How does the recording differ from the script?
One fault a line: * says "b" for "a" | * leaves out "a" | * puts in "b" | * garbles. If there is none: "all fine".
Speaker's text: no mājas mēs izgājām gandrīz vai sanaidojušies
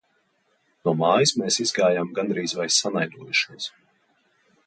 all fine